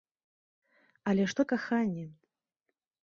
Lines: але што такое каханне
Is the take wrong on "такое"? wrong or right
wrong